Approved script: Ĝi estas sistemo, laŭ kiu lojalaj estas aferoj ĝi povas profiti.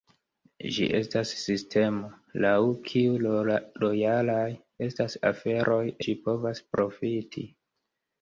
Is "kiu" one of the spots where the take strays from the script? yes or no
no